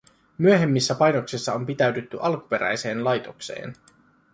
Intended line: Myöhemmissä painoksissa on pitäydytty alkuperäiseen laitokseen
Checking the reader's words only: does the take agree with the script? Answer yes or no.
yes